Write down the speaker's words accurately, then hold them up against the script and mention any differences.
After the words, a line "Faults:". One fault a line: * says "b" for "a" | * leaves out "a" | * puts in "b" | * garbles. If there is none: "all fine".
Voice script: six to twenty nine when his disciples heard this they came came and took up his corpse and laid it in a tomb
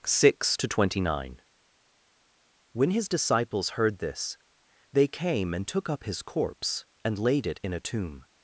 six to twenty nine when his disciples heard this they came and took up his corpse and laid it in a tomb
Faults:
* leaves out "came"